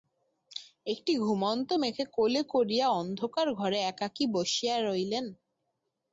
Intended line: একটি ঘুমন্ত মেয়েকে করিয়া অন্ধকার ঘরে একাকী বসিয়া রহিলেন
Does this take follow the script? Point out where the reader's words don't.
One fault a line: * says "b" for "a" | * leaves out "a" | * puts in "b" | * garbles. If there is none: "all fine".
* puts in "কোলে"